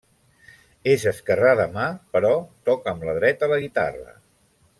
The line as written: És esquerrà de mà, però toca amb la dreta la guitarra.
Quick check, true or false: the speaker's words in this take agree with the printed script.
true